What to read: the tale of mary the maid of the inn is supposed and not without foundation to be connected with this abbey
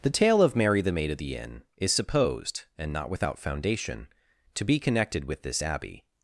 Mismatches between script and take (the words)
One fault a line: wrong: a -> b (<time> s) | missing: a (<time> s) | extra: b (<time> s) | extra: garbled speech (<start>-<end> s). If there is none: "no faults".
no faults